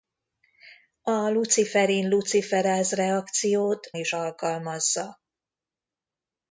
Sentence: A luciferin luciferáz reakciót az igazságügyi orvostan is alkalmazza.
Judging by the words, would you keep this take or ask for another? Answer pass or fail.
fail